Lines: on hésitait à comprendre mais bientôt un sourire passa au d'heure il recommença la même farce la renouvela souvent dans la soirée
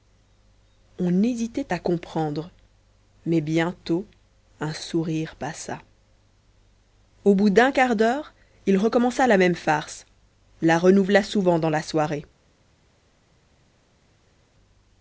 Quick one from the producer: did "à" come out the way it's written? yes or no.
yes